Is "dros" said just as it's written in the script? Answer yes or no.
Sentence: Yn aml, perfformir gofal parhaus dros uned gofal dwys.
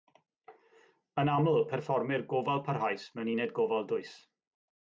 no